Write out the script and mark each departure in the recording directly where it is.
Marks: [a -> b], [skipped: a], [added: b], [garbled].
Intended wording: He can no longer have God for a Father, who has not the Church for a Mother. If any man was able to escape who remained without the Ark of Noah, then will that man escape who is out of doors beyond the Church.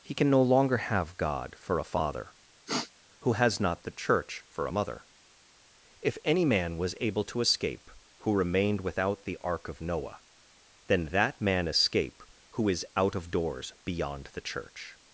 He can no longer have God for a Father, who has not the Church for a Mother. If any man was able to escape who remained without the Ark of Noah, then [skipped: will] that man escape who is out of doors beyond the Church.